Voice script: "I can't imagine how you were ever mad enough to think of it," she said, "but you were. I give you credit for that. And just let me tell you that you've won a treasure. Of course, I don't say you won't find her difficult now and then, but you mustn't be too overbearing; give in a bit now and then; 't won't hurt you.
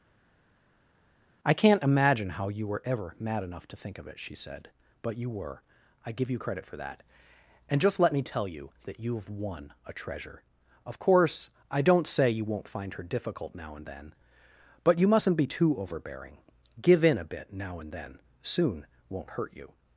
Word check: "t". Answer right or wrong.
wrong